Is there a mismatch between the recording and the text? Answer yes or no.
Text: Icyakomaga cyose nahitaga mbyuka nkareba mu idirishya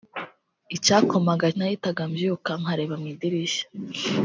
yes